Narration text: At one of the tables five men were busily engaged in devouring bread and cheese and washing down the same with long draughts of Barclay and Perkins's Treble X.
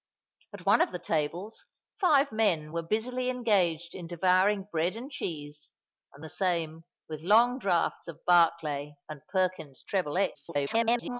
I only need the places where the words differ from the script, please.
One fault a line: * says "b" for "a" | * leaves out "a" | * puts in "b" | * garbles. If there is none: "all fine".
* leaves out "washing down"
* garbles